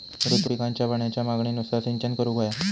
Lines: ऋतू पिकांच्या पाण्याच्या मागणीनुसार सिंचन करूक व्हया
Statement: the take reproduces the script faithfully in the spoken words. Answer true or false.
true